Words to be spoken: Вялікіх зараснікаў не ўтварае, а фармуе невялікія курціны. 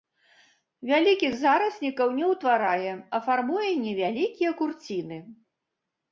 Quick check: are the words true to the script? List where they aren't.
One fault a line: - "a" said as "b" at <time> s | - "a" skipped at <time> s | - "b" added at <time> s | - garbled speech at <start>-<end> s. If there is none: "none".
none